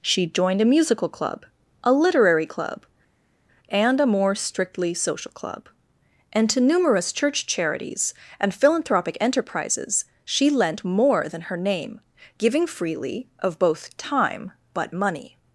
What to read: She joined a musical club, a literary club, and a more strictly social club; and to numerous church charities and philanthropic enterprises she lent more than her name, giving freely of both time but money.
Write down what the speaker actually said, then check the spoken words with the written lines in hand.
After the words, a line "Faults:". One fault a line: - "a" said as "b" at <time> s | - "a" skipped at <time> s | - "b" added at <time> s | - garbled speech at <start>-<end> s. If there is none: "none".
She joined a musical club, a literary club, and a more strictly social club; and to numerous church charities and philanthropic enterprises she lent more than her name, giving freely of both time but money.
Faults:
none